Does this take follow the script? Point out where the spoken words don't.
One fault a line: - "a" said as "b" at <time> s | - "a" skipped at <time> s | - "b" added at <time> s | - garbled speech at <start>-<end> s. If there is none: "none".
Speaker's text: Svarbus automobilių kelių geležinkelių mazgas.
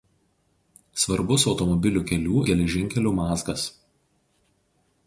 none